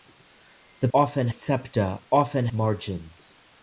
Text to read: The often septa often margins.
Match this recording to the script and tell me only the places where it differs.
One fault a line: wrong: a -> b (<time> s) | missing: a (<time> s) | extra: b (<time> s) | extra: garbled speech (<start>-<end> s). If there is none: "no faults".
no faults